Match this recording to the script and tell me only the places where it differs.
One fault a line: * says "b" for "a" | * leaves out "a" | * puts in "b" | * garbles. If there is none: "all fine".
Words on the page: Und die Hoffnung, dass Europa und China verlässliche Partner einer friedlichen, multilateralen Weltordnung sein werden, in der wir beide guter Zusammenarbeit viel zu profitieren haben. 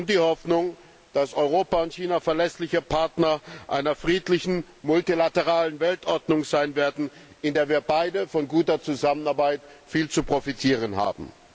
* puts in "von"